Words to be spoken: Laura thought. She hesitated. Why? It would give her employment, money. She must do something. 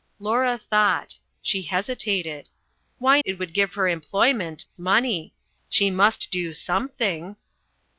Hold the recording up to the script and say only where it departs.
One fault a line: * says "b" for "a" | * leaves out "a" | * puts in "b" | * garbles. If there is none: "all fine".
all fine